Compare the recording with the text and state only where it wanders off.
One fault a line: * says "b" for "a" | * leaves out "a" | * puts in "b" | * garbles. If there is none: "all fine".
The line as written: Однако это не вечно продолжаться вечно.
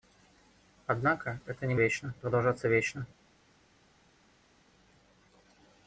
all fine